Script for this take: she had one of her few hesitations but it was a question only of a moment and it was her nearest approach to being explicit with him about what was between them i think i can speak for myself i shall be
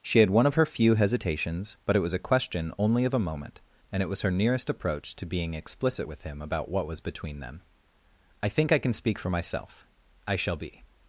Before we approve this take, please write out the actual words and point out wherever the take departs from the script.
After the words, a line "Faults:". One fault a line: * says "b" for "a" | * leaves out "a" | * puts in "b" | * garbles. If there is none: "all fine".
she had one of her few hesitations but it was a question only of a moment and it was her nearest approach to being explicit with him about what was between them i think i can speak for myself i shall be
Faults:
all fine